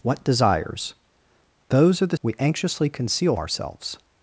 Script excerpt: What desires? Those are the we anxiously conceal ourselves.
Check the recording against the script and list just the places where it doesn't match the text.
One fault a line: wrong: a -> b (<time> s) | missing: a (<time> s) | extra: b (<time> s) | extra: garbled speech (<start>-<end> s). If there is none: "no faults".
no faults